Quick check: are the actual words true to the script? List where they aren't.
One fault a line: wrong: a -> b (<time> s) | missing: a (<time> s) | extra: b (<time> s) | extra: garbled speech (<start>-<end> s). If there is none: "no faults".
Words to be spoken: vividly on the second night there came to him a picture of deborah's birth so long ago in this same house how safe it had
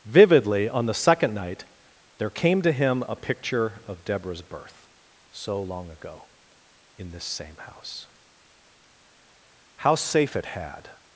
no faults